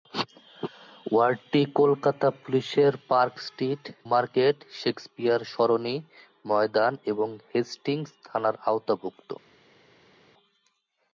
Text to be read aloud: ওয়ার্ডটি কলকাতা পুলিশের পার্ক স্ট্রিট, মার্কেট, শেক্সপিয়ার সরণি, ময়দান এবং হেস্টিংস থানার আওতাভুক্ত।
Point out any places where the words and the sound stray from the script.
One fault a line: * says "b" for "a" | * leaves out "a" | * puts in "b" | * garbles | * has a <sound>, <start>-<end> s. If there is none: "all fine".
all fine